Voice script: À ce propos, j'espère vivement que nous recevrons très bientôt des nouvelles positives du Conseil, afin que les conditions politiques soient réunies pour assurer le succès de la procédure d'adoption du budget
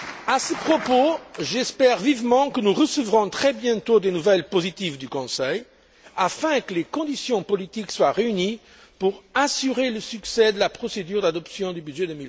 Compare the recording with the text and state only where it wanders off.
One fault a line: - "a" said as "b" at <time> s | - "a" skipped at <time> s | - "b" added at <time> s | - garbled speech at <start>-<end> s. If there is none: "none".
none